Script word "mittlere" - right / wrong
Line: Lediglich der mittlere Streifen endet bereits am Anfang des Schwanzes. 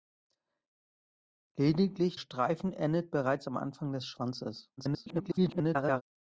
wrong